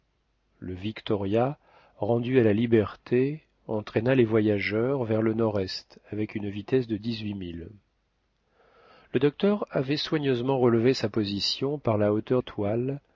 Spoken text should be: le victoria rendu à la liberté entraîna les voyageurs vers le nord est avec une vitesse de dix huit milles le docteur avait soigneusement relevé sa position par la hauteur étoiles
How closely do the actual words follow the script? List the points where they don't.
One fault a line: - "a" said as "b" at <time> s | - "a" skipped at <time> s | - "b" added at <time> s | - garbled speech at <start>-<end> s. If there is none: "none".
none